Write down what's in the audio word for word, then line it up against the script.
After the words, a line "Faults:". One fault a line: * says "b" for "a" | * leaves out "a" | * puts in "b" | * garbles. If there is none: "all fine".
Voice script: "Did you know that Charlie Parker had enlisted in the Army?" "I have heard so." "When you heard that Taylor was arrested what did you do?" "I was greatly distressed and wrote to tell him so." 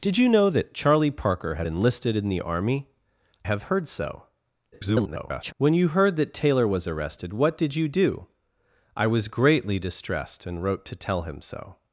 "Did you know that Charlie Parker had enlisted in the Army?" "have heard so." [garbled] "When you heard that Taylor was arrested what did you do?" "I was greatly distressed and wrote to tell him so."
Faults:
* leaves out "I"
* garbles